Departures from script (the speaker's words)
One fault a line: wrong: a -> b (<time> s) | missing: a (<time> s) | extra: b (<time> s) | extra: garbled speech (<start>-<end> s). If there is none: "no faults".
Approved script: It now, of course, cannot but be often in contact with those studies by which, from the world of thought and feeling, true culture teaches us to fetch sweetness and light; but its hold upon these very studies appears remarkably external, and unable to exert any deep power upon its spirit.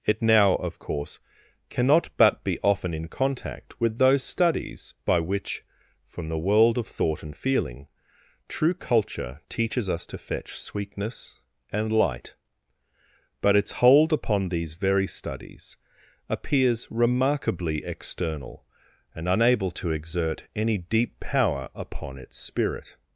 no faults